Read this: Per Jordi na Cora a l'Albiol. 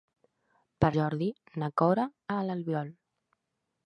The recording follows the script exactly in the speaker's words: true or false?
true